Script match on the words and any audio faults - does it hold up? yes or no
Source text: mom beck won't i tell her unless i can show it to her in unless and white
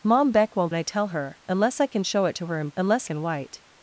yes